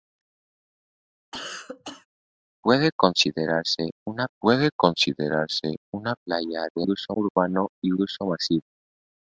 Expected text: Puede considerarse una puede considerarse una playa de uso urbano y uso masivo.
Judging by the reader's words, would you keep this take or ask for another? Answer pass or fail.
pass